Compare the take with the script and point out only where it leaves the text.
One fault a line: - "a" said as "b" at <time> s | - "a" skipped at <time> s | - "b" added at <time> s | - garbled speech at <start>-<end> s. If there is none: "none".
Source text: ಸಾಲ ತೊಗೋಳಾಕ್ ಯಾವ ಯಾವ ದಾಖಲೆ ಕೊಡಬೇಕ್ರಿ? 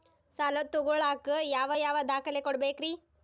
none